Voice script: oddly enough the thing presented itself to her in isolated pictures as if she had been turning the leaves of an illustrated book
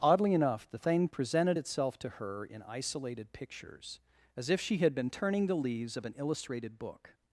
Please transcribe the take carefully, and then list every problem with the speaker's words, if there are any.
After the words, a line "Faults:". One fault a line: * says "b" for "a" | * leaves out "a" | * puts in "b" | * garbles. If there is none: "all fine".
oddly enough the thing presented itself to her in isolated pictures as if she had been turning the leaves of an illustrated book
Faults:
all fine